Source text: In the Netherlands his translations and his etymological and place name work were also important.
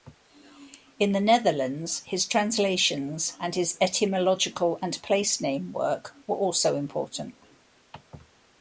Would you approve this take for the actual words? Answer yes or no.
yes